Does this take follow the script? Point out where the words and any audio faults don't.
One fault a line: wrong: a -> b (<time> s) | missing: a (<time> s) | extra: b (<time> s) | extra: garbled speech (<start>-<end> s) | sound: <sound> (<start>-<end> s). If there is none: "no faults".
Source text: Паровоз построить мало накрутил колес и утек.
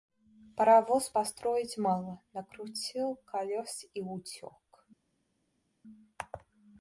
no faults